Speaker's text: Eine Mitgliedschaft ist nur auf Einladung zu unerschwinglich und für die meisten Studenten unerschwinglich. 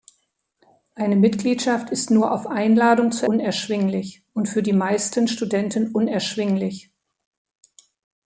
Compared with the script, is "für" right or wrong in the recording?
right